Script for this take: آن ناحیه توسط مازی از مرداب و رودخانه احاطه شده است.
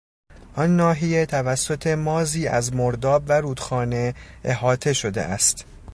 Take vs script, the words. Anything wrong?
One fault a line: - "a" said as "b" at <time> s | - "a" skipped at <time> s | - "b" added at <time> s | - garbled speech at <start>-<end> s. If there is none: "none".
none